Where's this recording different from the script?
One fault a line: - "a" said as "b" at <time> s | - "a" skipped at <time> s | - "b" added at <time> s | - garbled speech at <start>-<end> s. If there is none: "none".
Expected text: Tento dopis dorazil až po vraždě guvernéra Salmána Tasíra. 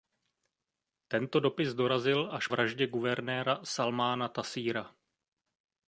- "po" skipped at 2.5 s